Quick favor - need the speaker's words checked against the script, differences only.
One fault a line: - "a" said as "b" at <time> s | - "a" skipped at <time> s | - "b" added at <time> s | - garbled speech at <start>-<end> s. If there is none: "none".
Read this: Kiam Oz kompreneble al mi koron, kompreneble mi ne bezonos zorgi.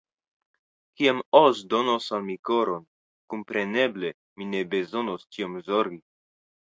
- "kompreneble" said as "donos" at 1.7 s
- "tiom" added at 5.4 s